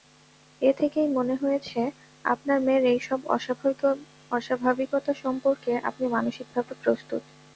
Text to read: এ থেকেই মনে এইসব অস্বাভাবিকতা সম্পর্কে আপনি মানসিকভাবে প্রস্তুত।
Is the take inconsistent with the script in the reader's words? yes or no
yes